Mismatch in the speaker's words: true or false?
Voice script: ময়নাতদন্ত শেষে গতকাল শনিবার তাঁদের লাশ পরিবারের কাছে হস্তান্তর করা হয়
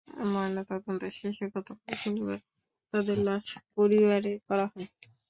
true